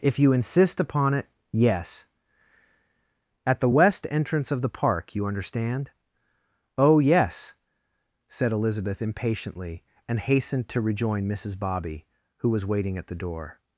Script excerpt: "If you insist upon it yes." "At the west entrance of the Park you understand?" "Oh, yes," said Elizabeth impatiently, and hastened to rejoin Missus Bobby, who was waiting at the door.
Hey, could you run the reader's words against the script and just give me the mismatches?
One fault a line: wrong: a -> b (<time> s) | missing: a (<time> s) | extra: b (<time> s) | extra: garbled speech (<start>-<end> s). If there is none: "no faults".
no faults